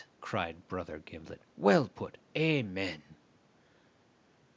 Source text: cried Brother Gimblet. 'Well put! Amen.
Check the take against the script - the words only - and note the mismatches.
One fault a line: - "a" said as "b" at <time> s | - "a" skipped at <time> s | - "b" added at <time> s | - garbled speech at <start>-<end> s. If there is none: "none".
none